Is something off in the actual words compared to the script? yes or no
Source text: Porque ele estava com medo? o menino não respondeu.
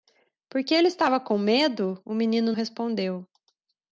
yes